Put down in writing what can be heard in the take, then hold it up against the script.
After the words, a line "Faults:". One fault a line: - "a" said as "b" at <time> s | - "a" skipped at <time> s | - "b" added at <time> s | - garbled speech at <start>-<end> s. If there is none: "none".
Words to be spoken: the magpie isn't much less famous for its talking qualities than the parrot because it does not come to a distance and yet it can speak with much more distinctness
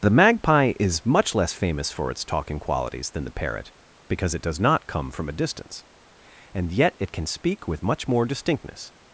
the magpie is much less famous for its talking qualities than the parrot because it does not come from a distance and yet it can speak with much more distinctness
Faults:
- "isn't" said as "is" at 0.8 s
- "to" said as "from" at 5.1 s